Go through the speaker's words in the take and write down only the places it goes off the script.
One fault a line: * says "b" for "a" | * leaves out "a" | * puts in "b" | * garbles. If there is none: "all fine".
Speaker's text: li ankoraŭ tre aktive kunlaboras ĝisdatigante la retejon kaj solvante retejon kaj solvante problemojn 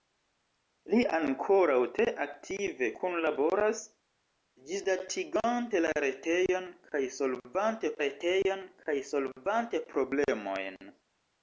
all fine